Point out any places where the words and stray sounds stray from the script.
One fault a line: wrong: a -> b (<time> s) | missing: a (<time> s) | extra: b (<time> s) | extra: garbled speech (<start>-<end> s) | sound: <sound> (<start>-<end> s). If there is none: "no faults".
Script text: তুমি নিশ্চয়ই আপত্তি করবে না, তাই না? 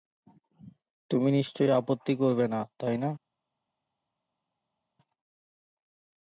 no faults